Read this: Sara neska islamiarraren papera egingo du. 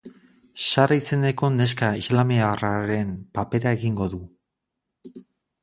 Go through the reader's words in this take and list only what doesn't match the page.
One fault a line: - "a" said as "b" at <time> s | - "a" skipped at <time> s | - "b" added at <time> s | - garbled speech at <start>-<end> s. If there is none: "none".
- "izeneko" added at 1.0 s